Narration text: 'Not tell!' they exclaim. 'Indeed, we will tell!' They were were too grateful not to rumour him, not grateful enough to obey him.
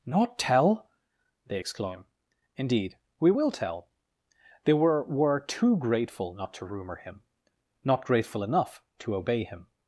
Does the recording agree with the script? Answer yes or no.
yes